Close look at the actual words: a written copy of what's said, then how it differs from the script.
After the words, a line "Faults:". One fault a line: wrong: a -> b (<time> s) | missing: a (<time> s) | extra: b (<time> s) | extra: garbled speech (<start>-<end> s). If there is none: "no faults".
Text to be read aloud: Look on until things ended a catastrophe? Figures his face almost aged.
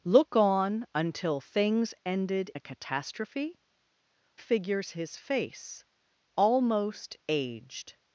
Look on until things ended a catastrophe? Figures his face almost aged.
Faults:
no faults